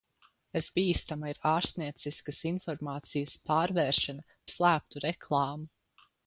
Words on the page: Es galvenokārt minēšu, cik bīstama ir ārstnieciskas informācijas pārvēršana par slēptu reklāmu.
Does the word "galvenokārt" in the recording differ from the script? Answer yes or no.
yes